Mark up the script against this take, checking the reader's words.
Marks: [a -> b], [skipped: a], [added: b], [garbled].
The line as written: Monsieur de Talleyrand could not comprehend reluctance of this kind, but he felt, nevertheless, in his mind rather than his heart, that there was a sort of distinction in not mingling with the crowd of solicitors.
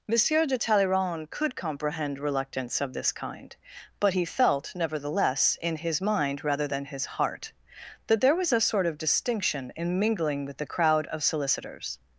Monsieur de Talleyrand could [skipped: not] comprehend reluctance of this kind, but he felt, nevertheless, in his mind rather than his heart, that there was a sort of distinction in [skipped: not] mingling with the crowd of solicitors.